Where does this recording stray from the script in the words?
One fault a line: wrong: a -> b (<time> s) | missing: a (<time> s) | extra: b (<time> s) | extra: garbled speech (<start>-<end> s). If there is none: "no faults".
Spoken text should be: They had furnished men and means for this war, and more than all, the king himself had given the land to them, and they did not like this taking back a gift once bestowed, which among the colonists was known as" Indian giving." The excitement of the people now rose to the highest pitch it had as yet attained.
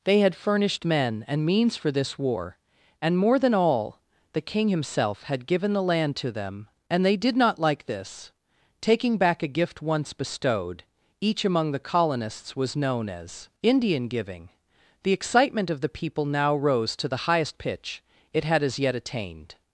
wrong: which -> each (11.2 s)